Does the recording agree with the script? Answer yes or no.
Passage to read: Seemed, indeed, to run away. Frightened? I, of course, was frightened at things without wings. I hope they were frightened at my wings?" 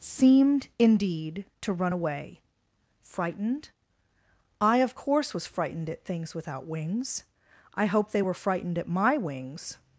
yes